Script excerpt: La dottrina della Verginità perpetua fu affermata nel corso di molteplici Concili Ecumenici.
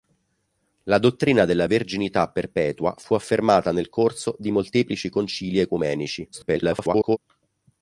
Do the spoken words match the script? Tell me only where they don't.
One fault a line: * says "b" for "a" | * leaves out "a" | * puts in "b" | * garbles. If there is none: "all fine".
* garbles